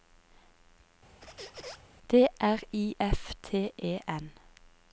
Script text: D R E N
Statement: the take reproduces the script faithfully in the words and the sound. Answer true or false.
false